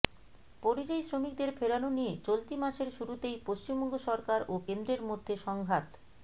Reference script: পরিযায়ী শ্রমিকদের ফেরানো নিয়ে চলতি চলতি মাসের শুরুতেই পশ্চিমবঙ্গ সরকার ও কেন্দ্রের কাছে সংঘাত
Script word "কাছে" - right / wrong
wrong